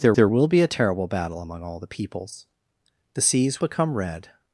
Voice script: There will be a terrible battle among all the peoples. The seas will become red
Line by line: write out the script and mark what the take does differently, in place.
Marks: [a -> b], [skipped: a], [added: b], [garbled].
There [added: there] will be a terrible battle among all the peoples. The seas [skipped: will] become red